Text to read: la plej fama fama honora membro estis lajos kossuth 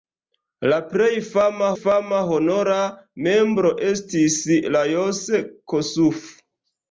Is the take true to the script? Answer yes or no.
yes